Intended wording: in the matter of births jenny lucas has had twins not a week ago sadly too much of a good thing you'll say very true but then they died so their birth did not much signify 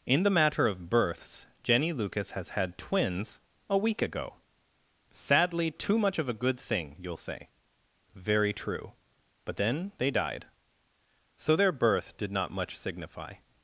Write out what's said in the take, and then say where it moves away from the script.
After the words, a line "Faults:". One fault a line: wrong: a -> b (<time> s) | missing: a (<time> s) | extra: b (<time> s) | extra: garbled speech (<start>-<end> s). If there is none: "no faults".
in the matter of births jenny lucas has had twins a week ago sadly too much of a good thing you'll say very true but then they died so their birth did not much signify
Faults:
missing: not (3.4 s)